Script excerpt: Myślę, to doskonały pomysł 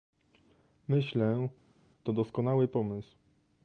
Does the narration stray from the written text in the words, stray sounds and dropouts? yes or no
no